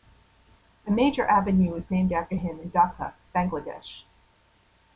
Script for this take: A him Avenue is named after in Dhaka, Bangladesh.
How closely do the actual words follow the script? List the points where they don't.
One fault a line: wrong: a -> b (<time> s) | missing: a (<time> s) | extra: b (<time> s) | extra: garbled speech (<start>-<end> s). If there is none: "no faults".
wrong: him -> major (0.9 s)
extra: him (2.3 s)